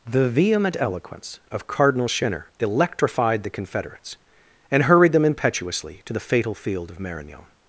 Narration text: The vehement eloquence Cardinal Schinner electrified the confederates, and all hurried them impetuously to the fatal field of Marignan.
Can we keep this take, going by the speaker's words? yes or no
no